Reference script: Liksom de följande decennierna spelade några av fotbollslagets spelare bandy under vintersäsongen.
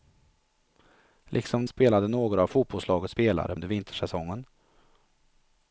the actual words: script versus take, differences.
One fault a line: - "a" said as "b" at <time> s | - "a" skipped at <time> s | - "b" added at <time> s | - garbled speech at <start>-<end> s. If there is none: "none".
- "de följande decennierna" skipped at 1.6 s
- "bandy" skipped at 3.6 s